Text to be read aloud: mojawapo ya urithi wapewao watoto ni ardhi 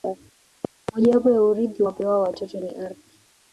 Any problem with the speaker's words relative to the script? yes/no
no